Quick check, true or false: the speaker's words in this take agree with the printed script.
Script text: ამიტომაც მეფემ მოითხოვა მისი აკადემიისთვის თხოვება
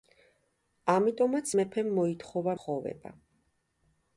false